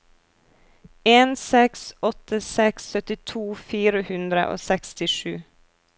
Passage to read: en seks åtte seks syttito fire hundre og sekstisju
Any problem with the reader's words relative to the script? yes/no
no